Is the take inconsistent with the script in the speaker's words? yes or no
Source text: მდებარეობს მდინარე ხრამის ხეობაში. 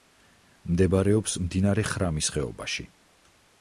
no